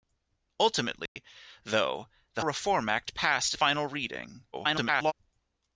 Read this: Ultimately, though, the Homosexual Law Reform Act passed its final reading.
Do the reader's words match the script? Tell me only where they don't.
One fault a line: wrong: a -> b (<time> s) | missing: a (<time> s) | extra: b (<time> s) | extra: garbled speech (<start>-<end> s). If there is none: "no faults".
missing: Homosexual Law (2.4 s)
missing: its (3.5 s)
extra: garbled speech (4.5-5.1 s)